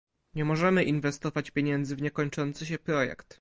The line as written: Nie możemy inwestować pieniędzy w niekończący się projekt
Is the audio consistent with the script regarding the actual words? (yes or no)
yes